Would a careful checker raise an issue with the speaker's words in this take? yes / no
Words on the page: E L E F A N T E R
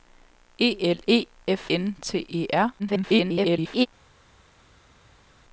yes